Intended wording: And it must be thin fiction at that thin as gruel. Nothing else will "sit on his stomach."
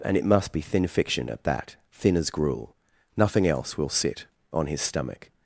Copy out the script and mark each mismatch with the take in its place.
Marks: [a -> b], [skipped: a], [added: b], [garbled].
And it must be thin fiction at that thin as gruel. Nothing else will "sit on his stomach."